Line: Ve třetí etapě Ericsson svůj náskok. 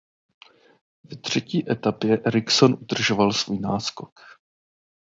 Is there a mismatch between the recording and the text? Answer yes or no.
yes